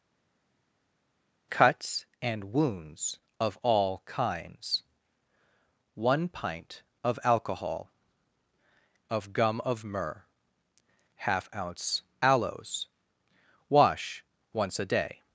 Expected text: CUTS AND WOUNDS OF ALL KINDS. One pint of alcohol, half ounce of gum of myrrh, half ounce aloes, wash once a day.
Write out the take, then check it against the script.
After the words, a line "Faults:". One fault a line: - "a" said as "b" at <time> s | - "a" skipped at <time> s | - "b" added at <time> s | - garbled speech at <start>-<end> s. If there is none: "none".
CUTS AND WOUNDS OF ALL KINDS. One pint of alcohol, of gum of myrrh, half ounce aloes, wash once a day.
Faults:
- "half ounce" skipped at 7.9 s